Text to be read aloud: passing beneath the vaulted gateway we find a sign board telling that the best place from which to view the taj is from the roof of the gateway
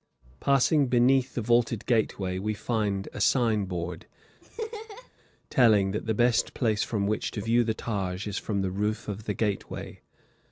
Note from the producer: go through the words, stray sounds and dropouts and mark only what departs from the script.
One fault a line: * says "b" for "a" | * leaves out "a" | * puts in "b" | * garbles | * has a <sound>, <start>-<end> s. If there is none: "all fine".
* has a laugh, 4.4-5.1 s